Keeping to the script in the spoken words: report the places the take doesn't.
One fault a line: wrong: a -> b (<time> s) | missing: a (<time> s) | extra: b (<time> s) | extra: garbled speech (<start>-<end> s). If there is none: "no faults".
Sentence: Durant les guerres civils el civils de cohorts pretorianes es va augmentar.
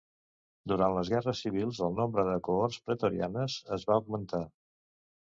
wrong: civils -> nombre (2.0 s)